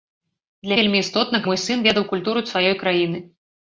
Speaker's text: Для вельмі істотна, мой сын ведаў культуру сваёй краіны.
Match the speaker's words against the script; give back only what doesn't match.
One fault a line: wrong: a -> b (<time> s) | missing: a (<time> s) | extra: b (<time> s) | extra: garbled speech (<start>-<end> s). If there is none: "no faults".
no faults